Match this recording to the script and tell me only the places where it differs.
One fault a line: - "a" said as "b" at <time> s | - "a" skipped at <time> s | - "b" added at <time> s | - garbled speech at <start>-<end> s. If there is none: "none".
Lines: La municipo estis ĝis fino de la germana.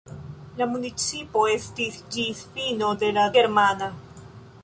none